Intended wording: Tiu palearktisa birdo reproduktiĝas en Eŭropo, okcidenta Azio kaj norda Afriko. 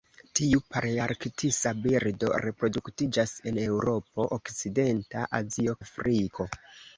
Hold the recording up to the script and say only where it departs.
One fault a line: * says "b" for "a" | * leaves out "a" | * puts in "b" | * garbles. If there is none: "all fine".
* leaves out "kaj norda"